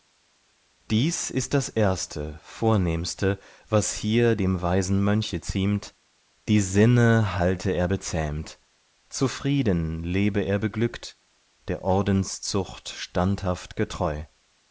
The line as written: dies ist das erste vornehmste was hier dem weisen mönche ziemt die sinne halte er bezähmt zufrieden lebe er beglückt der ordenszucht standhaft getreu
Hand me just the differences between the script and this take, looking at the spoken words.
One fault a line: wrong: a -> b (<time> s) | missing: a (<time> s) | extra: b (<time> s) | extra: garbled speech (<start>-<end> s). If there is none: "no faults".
no faults